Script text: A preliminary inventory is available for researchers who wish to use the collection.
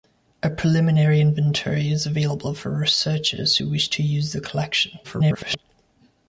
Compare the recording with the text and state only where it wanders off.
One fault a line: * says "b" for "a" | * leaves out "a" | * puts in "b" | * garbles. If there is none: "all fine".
* garbles